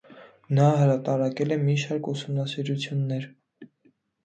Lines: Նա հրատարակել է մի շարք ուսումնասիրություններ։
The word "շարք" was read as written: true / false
true